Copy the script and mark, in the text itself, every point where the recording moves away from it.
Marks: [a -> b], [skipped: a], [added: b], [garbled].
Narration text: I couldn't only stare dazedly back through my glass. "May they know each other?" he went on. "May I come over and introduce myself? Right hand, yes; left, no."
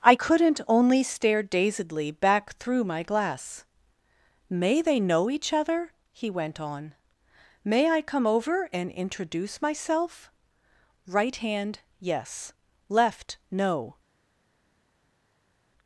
I couldn't only stare dazedly back through my glass. "May they know each other?" he went on. "May I come over and introduce myself? Right hand, yes; left, no."